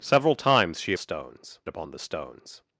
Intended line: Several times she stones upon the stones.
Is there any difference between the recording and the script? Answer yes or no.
no